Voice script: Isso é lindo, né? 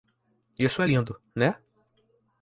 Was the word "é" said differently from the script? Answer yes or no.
no